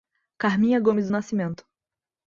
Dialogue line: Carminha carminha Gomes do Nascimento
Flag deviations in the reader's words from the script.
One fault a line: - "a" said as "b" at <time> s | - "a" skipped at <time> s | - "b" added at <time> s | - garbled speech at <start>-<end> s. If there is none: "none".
- "carminha" skipped at 0.8 s